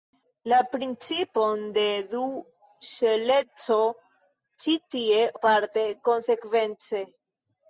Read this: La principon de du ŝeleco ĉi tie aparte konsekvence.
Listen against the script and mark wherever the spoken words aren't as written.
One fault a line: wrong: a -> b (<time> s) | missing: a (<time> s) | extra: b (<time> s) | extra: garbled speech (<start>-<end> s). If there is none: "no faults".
no faults